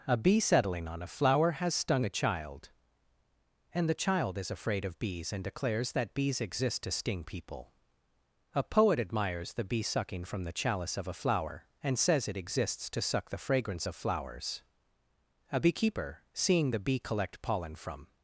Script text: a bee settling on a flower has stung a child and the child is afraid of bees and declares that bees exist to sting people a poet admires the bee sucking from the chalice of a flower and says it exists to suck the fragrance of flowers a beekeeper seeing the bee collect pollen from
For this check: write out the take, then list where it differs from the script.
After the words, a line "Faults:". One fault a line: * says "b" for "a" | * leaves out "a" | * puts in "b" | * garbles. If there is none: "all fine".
a bee settling on a flower has stung a child and the child is afraid of bees and declares that bees exist to sting people a poet admires the bee sucking from the chalice of a flower and says it exists to suck the fragrance of flowers a beekeeper seeing the bee collect pollen from
Faults:
all fine